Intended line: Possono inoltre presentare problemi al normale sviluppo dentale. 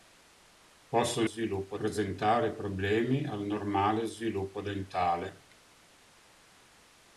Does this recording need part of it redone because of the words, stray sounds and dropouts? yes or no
yes